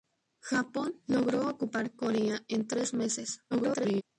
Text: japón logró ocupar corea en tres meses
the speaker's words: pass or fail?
fail